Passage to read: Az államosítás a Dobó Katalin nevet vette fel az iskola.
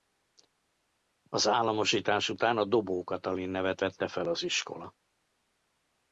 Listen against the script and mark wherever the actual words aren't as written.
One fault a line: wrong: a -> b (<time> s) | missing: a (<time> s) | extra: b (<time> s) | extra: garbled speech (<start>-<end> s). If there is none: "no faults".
extra: után (2.3 s)